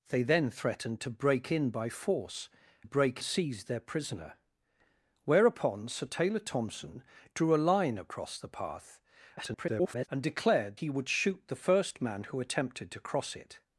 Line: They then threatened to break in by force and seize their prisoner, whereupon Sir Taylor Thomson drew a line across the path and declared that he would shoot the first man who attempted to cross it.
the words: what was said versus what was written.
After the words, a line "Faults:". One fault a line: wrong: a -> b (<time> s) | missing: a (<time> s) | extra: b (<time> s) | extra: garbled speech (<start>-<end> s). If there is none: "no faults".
They then threatened to break in by force break seize their prisoner, whereupon Sir Taylor Thomson drew a line across the path [garbled] and declared he would shoot the first man who attempted to cross it.
Faults:
wrong: and -> break (2.8 s)
extra: garbled speech (9.4-10.1 s)
missing: that (10.8 s)